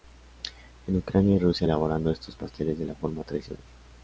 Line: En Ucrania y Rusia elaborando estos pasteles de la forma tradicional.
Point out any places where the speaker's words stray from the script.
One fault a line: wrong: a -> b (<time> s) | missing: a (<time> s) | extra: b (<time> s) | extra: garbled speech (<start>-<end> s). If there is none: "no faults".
no faults